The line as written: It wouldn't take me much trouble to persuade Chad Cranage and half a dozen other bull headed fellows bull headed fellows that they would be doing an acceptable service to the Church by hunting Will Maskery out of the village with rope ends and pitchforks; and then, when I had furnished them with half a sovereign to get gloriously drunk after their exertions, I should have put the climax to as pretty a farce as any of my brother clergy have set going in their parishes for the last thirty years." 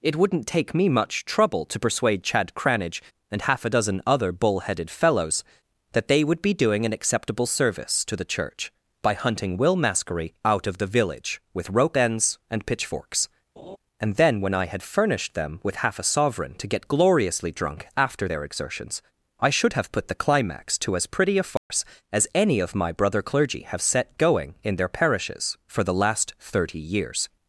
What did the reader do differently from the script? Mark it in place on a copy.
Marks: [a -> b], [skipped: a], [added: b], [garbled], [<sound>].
It wouldn't take me much trouble to persuade Chad Cranage and half a dozen other bull headed fellows [skipped: bull headed fellows] that they would be doing an acceptable service to the Church by hunting Will Maskery out of the village with rope ends and pitchforks; [laugh] and then, when I had furnished them with half a sovereign to get gloriously drunk after their exertions, I should have put the climax to as pretty a farce [dropout] as any of my brother clergy have set going in their parishes for the last thirty years."